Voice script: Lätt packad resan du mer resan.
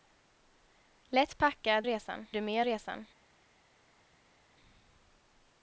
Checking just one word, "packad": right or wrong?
right